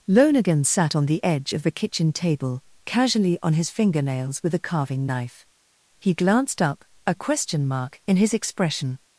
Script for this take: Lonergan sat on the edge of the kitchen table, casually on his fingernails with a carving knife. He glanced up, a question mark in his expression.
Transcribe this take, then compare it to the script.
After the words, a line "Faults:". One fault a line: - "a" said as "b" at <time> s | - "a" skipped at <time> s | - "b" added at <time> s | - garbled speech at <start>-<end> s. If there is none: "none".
Lonergan sat on the edge of the kitchen table, casually on his fingernails with a carving knife. He glanced up, a question mark in his expression.
Faults:
none